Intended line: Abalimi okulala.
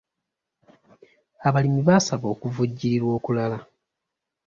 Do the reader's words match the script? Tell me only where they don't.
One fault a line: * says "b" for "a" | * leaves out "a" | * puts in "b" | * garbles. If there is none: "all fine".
* puts in "baasaba okuvujjirirwa"